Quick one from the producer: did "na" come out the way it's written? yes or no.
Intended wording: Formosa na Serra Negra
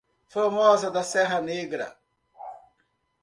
no